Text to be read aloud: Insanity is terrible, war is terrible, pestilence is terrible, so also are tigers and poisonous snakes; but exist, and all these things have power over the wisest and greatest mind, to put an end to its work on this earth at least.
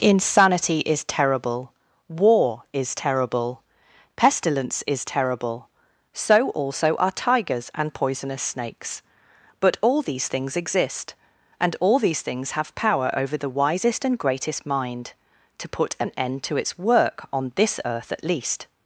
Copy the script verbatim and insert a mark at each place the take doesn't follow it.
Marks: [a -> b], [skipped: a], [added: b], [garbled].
Insanity is terrible, war is terrible, pestilence is terrible, so also are tigers and poisonous snakes; but [added: all these things] exist, and all these things have power over the wisest and greatest mind, to put an end to its work on this earth at least.